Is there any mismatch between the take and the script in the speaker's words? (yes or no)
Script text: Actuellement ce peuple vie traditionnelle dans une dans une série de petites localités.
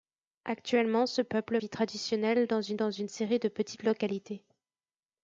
no